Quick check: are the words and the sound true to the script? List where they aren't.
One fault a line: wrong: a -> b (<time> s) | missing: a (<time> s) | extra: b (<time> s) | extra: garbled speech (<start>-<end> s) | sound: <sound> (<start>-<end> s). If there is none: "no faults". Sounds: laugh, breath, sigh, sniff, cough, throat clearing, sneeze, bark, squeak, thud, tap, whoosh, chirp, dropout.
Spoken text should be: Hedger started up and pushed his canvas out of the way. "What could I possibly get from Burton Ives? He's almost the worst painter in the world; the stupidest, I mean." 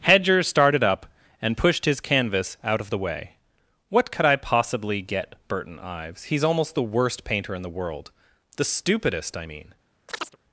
missing: from (5.3 s)
sound: chirp (10.1-10.4 s)